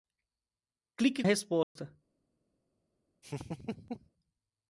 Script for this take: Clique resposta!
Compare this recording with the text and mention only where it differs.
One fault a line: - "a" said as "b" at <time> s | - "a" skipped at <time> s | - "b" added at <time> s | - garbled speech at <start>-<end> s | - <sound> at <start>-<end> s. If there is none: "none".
- dropout at 1.6-1.8 s
- laugh at 3.2-4.1 s